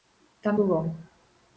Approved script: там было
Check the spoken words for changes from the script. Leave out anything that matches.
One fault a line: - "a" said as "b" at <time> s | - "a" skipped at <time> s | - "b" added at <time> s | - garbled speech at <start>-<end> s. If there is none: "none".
none